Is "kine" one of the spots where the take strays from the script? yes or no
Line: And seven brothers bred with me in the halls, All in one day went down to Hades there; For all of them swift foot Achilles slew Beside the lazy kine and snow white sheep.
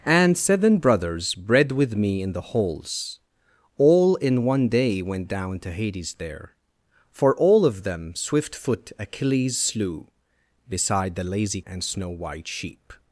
yes